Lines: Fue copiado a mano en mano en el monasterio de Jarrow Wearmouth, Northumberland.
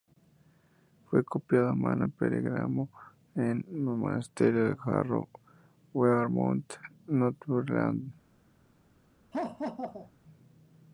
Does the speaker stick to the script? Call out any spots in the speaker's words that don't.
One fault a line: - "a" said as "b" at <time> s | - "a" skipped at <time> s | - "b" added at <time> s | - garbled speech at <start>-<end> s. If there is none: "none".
- "mano" said as "pergamino" at 2.1 s